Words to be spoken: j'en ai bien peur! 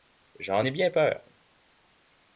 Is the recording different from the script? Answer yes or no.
no